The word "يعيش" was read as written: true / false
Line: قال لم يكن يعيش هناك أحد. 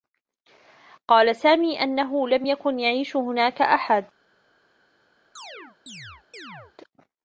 true